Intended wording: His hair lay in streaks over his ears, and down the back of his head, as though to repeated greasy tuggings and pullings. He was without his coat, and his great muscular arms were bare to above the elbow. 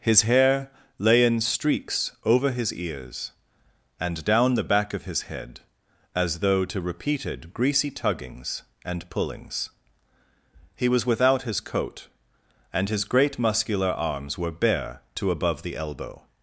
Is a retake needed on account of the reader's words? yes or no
no